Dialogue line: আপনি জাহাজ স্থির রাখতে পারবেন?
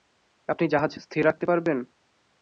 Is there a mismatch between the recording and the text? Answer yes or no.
no